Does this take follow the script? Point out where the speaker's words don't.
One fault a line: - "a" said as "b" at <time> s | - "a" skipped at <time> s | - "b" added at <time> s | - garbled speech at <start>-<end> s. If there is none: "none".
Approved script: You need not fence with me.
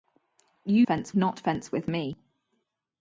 - "need" said as "fence" at 0.8 s